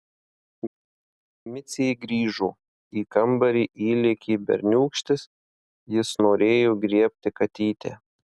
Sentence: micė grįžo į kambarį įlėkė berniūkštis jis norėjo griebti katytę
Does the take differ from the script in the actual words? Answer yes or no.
no